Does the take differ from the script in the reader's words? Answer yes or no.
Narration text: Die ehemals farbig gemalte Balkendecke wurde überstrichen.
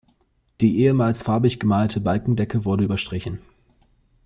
no